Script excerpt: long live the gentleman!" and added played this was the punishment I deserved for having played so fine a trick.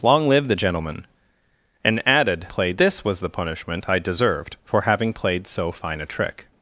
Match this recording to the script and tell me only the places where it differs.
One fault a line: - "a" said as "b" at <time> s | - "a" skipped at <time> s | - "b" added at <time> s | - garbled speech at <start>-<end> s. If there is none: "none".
none